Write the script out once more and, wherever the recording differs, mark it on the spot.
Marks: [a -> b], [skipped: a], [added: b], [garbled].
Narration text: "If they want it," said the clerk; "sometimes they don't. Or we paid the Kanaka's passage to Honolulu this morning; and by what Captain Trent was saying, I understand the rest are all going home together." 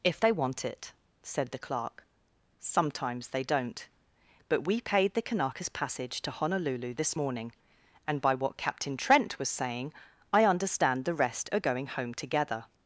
"If they want it," said the clerk; "sometimes they don't. [Or -> But] we paid the Kanaka's passage to Honolulu this morning; and by what Captain Trent was saying, I understand the rest are [skipped: all] going home together."